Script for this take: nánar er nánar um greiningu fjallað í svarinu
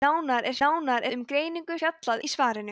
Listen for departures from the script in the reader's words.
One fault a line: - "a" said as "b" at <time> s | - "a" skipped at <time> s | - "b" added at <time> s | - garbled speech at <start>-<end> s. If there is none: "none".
none